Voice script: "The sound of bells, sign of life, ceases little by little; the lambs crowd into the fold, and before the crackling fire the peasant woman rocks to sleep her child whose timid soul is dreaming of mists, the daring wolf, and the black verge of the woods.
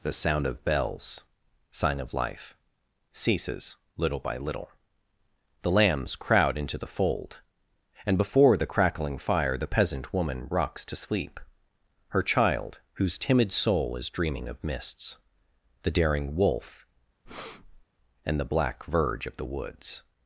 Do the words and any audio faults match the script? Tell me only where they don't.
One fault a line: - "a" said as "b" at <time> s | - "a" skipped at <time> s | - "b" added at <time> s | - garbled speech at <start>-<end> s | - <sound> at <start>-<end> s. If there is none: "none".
- breath at 17.2-17.8 s